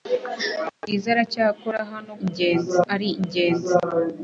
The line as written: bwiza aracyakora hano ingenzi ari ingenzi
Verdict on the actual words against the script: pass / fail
pass